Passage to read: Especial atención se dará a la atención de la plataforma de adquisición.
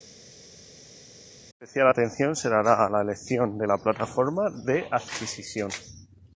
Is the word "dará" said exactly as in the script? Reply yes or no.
yes